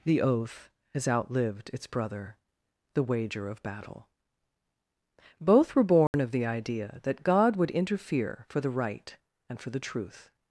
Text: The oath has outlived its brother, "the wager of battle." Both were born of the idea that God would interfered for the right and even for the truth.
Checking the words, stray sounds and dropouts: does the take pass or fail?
fail